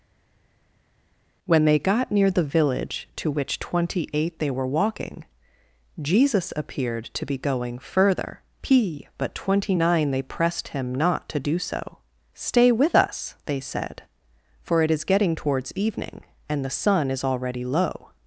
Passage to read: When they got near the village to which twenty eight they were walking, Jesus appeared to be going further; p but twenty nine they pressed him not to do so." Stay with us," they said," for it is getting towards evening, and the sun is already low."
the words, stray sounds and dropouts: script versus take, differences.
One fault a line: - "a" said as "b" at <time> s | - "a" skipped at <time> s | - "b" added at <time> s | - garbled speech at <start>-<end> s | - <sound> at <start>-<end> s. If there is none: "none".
none